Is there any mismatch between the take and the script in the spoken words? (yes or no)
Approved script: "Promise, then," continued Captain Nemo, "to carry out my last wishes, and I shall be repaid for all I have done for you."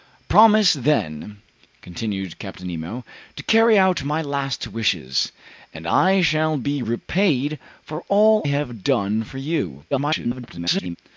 yes